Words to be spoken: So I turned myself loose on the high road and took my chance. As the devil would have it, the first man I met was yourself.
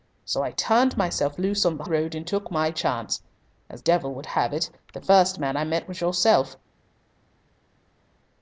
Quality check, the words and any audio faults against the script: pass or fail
fail